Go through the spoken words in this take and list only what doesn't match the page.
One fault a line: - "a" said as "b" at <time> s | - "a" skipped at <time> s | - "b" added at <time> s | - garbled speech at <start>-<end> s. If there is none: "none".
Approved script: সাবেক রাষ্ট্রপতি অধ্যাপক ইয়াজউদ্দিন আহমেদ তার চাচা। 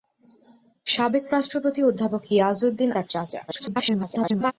- "আহমেদ" skipped at 2.9 s
- garbled speech at 3.5-4.5 s